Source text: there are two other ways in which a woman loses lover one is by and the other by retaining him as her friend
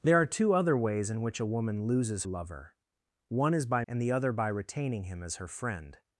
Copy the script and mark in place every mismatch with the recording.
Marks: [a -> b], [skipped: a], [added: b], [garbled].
there are two other ways in which a woman loses lover one is by and the other by retaining him as her friend